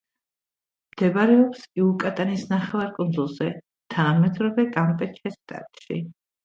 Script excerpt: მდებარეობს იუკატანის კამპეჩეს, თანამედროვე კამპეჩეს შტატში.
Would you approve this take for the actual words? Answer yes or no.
no